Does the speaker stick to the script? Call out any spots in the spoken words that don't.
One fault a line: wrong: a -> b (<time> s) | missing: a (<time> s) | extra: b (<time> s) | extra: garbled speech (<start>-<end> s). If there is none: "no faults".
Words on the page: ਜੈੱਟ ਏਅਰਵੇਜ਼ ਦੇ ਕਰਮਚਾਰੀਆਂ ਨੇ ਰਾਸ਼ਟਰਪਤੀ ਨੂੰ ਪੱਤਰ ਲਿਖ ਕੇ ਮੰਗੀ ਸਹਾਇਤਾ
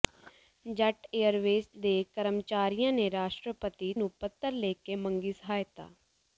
no faults